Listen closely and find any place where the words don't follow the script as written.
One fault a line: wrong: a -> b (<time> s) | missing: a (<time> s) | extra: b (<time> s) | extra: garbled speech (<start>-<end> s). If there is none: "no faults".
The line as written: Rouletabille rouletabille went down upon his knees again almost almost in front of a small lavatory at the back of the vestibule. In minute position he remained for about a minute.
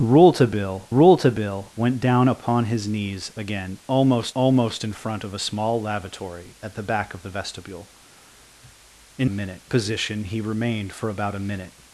no faults